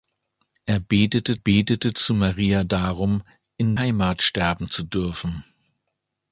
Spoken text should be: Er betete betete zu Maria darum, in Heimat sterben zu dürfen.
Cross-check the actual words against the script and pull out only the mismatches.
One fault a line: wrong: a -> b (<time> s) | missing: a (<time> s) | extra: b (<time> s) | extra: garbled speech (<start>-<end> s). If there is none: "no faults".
no faults